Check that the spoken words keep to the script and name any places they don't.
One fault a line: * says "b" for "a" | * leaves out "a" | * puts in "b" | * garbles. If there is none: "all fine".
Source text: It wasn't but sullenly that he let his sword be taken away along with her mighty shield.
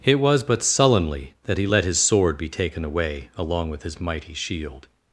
* says "was" for "wasn't"
* says "his" for "her"